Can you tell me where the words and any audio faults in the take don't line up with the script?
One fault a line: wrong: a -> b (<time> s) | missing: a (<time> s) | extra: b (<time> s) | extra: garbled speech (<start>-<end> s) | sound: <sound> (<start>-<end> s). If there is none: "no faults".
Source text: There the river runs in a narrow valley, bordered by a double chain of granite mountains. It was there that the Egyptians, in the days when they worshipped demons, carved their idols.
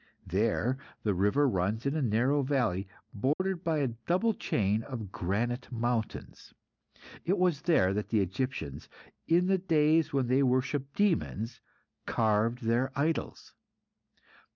sound: dropout (3.3-3.4 s)